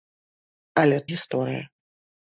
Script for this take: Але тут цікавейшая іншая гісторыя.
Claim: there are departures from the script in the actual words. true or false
true